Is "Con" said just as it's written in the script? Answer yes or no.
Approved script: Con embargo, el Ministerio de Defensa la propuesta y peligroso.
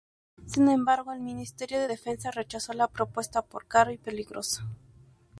no